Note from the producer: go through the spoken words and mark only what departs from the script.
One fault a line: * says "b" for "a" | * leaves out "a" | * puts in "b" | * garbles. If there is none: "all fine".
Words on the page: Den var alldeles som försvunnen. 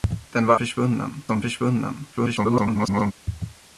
* says "försvunnen" for "alldeles"
* garbles